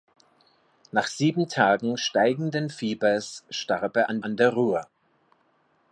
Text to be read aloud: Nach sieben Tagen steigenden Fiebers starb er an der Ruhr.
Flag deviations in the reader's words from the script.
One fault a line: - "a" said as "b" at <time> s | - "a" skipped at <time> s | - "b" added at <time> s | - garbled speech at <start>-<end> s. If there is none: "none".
- "an" added at 4.2 s